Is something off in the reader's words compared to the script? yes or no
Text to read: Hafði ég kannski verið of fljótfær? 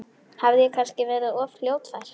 no